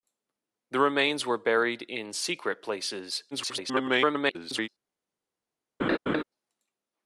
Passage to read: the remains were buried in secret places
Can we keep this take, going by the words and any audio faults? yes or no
no